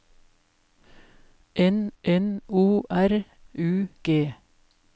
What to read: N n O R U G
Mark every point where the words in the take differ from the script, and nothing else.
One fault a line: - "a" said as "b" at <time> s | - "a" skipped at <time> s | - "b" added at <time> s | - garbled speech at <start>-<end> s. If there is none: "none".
none